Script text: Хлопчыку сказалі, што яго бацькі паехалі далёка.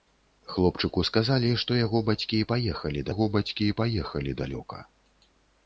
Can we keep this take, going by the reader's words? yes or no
no